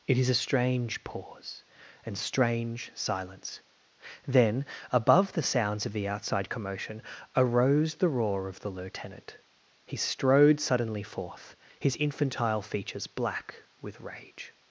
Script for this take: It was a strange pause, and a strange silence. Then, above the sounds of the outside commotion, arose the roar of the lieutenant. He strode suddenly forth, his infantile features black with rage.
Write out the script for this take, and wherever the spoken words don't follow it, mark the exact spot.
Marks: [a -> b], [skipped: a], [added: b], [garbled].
It [was -> is] a strange pause, and [skipped: a] strange silence. Then, above the sounds of the outside commotion, arose the roar of the lieutenant. He strode suddenly forth, his infantile features black with rage.